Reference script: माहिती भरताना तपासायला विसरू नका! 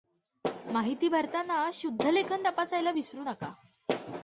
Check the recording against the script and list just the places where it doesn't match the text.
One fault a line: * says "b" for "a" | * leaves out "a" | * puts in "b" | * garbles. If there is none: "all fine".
* puts in "शुद्धलेखन"